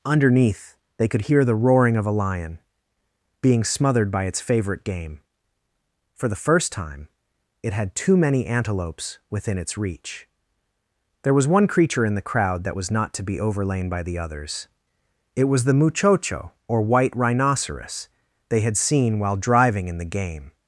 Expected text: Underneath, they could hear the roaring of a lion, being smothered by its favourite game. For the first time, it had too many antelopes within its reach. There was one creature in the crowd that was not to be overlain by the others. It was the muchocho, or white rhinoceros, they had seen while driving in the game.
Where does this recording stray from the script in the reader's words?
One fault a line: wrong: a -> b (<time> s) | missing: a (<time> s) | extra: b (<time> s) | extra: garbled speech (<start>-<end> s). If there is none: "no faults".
no faults